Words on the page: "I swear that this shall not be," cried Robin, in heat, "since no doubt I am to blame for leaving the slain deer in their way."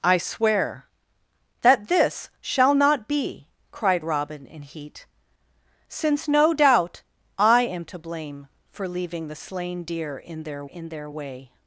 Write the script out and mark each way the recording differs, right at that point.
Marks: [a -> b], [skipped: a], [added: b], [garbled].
"I swear that this shall not be," cried Robin, in heat, "since no doubt I am to blame for leaving the slain deer in their [added: in their] way."